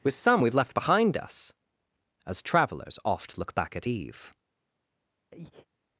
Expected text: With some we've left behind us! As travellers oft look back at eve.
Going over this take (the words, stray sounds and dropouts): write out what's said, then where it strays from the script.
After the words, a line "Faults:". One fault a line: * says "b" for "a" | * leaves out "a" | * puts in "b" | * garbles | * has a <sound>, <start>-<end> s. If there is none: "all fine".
With some we've left behind us! As travellers oft look back at eve.
Faults:
* has a breath, 5.3-5.7 s